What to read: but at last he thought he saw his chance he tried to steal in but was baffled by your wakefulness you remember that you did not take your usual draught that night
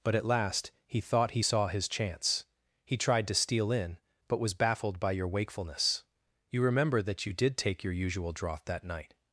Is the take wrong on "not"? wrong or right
wrong